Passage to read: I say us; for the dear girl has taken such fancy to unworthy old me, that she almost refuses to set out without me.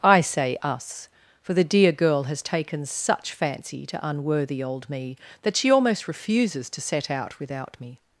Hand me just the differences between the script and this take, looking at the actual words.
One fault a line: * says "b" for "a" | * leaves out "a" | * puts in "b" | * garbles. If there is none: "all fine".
all fine